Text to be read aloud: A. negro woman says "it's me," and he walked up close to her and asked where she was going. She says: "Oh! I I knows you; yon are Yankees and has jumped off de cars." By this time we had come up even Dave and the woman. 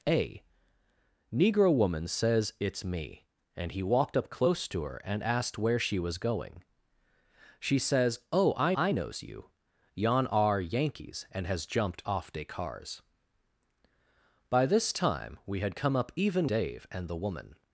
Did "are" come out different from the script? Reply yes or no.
no